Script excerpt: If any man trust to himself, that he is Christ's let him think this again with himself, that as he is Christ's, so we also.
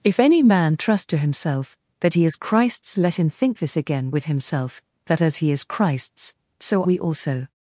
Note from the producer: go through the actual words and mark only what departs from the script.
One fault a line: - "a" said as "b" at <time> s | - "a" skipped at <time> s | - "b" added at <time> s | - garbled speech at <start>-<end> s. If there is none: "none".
none